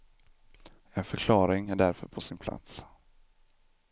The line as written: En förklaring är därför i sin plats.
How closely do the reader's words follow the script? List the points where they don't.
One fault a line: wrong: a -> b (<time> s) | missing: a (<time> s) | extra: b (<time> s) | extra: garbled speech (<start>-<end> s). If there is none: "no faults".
wrong: i -> på (2.1 s)